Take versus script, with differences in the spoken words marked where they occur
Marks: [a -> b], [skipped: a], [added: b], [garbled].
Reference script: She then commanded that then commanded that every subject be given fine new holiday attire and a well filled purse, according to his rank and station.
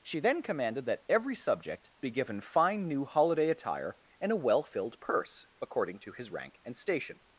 She then commanded that [skipped: then commanded that] every subject be given fine new holiday attire and a well filled purse, according to his rank and station.